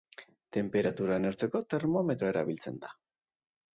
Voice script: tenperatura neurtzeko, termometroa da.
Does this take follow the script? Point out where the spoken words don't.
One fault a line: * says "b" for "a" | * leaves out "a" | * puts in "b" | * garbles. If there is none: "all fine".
* puts in "erabiltzen"